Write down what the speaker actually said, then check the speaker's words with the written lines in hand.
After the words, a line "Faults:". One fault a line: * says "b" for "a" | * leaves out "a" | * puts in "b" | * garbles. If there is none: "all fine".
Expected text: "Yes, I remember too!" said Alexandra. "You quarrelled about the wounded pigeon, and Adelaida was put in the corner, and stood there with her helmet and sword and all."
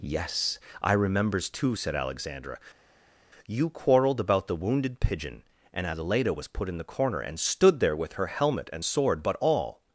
"Yes, I remembers too!" said Alexandra. "You quarrelled about the wounded pigeon, and Adelaida was put in the corner, and stood there with her helmet and sword but all."
Faults:
* says "remembers" for "remember"
* says "but" for "and"